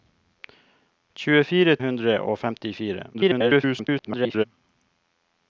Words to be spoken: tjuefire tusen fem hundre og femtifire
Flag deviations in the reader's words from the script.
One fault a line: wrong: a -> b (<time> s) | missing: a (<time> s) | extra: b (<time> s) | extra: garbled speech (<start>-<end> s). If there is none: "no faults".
missing: tusen fem (1.8 s)
extra: garbled speech (3.1-4.4 s)